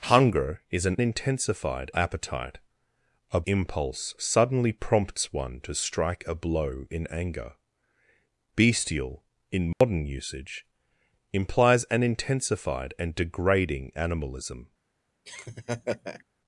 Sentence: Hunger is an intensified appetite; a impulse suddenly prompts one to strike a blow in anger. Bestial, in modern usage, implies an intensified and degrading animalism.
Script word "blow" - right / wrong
right